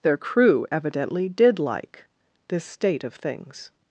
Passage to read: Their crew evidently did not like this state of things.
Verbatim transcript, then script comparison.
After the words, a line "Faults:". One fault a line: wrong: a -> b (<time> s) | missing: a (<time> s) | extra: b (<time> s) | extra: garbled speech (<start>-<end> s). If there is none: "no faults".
Their crew evidently did like this state of things.
Faults:
missing: not (1.6 s)